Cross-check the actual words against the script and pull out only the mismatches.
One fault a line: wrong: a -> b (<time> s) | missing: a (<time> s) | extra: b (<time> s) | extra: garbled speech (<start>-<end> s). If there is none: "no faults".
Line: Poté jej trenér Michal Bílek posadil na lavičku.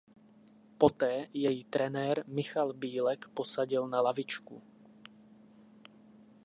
no faults